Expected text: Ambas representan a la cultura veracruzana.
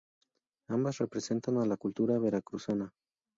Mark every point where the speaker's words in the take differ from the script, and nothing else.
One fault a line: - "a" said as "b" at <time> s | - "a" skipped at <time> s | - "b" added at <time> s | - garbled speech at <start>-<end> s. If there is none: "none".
none